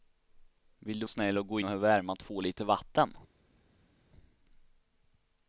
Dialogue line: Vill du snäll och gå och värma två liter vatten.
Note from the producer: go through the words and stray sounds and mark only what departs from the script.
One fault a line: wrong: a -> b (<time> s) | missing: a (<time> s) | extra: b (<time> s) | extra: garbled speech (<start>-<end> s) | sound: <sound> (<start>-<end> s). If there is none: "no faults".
no faults